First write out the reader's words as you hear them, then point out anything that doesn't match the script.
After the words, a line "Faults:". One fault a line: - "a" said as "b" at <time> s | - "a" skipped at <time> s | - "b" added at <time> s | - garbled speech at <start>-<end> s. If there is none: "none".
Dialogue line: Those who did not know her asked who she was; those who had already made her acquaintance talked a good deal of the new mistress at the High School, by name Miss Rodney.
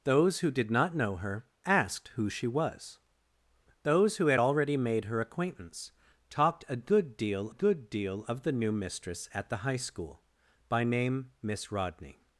Those who did not know her asked who she was; those who had already made her acquaintance talked a good deal good deal of the new mistress at the High School, by name Miss Rodney.
Faults:
- "good deal" added at 7.5 s